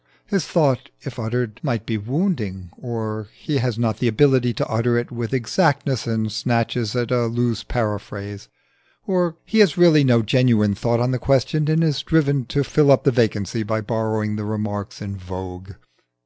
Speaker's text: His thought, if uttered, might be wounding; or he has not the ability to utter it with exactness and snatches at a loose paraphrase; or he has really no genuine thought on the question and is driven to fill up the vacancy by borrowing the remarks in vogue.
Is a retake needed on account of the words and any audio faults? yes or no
no